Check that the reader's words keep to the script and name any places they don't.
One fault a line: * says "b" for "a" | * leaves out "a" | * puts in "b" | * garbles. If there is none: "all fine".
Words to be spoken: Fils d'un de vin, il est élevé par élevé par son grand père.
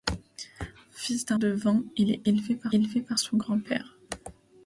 all fine